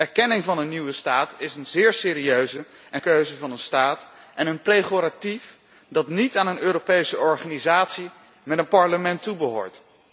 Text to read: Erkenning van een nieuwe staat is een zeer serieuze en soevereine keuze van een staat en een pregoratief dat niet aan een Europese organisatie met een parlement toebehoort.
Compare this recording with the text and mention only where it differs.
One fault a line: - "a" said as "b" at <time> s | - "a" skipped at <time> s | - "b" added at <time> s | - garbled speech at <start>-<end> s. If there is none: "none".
- "soevereine" skipped at 3.0 s